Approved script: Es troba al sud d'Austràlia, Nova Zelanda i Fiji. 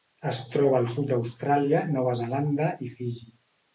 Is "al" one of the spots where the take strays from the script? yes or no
no